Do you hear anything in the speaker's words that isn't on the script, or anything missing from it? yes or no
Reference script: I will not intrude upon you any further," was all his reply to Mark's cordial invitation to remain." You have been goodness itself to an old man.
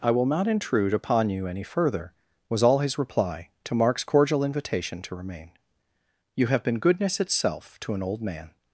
no